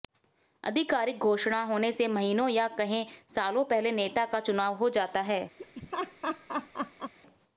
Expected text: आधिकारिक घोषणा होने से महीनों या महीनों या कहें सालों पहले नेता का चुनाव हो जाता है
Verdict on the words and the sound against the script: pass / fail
fail